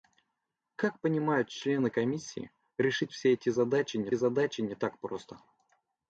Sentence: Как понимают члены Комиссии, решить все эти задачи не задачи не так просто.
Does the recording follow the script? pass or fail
pass